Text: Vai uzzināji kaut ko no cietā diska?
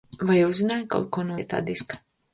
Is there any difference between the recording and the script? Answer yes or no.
no